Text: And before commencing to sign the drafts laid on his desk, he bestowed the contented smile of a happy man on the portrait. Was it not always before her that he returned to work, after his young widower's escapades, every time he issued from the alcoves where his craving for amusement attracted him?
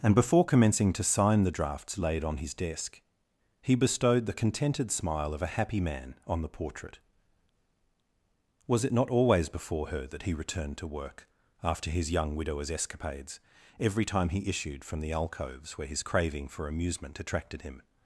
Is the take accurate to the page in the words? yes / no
yes